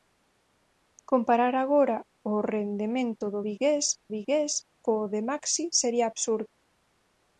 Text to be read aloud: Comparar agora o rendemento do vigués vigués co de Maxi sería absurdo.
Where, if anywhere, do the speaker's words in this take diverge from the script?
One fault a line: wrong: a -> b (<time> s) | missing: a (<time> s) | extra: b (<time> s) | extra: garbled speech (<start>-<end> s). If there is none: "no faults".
no faults